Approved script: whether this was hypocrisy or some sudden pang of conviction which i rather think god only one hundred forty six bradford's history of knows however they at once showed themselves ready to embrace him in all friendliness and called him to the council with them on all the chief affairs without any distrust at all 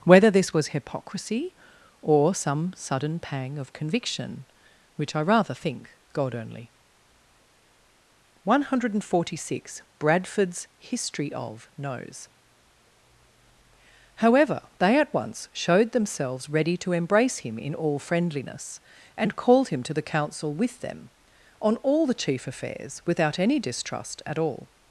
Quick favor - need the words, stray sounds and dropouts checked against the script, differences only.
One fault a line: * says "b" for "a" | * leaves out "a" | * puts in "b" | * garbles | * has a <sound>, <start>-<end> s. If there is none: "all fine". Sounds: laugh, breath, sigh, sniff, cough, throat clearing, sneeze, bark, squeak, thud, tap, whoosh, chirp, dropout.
all fine